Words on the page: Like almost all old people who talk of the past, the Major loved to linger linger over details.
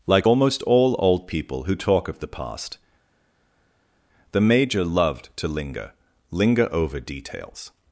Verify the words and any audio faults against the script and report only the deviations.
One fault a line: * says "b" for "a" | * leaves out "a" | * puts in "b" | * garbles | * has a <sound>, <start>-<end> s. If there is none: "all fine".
all fine